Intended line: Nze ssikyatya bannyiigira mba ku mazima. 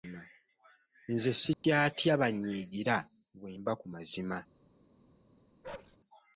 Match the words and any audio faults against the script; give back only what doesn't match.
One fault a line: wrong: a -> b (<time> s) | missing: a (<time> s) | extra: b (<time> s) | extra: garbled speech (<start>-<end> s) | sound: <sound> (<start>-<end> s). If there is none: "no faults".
sound: dropout (1.5-1.6 s)
extra: bwe (3.4 s)
sound: bark (5.6-6.0 s)